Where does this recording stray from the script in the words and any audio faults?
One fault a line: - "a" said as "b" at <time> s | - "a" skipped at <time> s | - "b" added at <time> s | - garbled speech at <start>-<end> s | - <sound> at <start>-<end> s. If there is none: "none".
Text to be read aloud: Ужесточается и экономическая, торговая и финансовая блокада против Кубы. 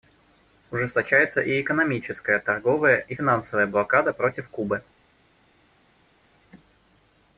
none